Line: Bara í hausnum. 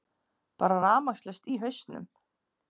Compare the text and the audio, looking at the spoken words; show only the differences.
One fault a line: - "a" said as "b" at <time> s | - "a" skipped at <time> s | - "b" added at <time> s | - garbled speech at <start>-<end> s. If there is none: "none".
- "rafmagnslaust" added at 0.8 s